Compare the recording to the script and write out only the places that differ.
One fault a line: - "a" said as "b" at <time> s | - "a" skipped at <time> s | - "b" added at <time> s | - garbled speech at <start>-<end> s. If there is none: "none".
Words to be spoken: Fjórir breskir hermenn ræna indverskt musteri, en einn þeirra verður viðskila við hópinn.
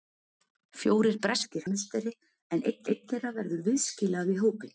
- "hermenn ræna indverskt" skipped at 1.7 s
- "einn" added at 2.9 s